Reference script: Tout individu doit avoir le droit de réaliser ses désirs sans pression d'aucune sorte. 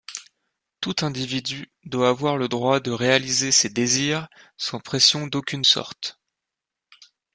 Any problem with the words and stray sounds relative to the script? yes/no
no